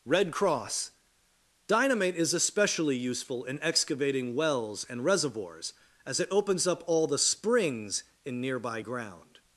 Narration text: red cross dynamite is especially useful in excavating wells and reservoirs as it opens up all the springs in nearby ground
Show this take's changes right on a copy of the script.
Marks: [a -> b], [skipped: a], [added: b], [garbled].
red cross dynamite is especially useful in excavating wells and reservoirs as it opens up all the springs in nearby ground